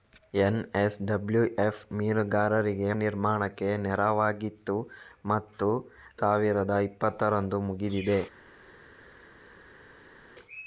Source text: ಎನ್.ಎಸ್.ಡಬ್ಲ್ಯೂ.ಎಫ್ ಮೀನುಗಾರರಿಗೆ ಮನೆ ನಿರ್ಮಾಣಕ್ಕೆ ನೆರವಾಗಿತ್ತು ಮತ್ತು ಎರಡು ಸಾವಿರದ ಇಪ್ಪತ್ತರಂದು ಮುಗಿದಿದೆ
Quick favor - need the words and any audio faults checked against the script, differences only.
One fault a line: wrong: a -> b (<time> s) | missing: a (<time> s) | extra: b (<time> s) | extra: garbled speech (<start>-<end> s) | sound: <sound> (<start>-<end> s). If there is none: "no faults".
missing: ಮನೆ (2.9 s)
missing: ಎರಡು (5.7 s)